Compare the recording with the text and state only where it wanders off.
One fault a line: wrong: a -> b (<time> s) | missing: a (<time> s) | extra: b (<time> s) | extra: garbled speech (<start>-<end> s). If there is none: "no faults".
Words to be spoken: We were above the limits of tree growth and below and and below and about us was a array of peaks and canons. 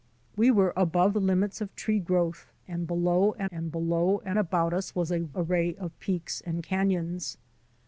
no faults